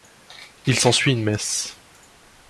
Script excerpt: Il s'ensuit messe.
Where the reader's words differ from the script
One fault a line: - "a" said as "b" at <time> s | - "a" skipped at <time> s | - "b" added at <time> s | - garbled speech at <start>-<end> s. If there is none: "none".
- "une" added at 1.1 s